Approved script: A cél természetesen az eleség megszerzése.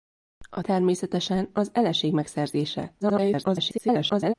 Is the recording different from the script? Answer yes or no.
yes